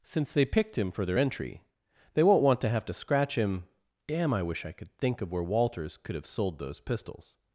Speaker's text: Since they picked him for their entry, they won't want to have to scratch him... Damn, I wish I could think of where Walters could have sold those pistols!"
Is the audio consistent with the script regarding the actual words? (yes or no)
yes